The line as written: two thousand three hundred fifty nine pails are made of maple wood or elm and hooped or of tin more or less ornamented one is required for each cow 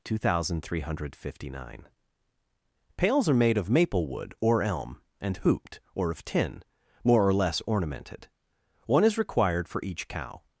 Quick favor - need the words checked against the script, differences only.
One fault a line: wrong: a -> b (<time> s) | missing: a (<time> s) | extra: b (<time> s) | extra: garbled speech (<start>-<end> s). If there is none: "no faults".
no faults